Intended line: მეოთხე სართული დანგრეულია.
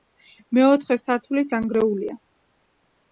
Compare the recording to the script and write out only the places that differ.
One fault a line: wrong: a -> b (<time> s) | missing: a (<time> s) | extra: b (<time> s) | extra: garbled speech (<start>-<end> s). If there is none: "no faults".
no faults